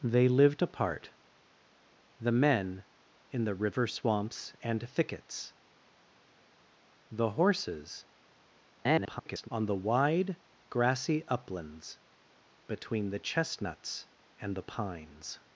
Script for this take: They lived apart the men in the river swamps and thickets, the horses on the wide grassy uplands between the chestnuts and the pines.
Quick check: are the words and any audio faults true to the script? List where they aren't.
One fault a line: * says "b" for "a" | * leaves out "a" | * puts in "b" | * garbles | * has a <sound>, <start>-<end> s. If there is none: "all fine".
* garbles